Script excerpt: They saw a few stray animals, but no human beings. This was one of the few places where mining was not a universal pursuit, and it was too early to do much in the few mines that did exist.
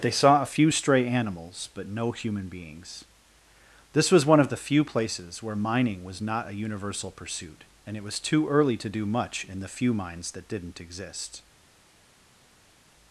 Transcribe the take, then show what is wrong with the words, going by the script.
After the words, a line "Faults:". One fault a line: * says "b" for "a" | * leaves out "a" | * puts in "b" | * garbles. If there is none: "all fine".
They saw a few stray animals, but no human beings. This was one of the few places where mining was not a universal pursuit, and it was too early to do much in the few mines that didn't exist.
Faults:
* says "didn't" for "did"